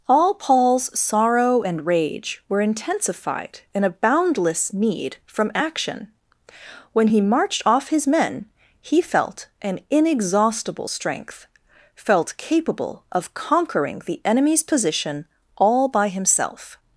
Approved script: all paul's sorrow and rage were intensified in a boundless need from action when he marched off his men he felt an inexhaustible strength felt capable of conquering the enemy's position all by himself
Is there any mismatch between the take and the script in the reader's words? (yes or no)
no